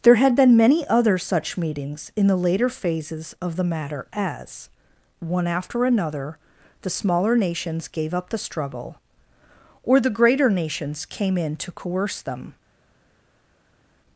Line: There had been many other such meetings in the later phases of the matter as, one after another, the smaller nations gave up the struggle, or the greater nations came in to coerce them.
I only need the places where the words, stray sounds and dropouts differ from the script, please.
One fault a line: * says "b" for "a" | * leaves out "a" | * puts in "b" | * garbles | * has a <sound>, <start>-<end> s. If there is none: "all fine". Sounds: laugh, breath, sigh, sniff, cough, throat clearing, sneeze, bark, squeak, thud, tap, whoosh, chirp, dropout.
all fine